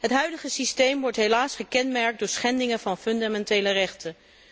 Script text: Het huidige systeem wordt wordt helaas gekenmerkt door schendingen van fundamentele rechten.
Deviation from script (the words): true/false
true